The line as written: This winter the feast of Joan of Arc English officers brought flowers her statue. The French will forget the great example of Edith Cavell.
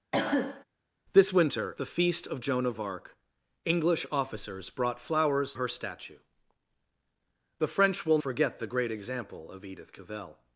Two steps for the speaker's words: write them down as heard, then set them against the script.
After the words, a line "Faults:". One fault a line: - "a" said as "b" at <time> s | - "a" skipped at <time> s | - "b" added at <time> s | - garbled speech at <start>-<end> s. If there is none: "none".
This winter the feast of Joan of Arc English officers brought flowers her statue. The French will forget the great example of Edith Cavell.
Faults:
none